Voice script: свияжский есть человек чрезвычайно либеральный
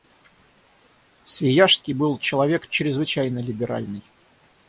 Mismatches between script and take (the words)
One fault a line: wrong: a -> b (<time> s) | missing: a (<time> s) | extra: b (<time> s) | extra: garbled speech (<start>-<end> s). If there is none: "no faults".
wrong: есть -> был (1.9 s)